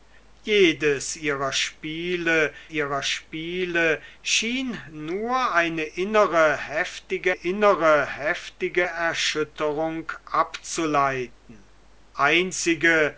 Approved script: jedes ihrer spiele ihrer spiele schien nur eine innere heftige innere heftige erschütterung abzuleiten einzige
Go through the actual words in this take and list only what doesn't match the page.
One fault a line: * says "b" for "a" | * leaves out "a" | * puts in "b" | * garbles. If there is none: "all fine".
all fine